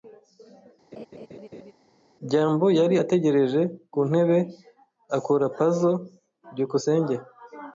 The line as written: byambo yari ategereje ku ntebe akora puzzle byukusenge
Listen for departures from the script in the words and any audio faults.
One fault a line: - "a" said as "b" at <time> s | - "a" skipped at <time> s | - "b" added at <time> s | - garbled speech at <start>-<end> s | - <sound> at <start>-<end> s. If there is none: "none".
- laugh at 0.9-1.7 s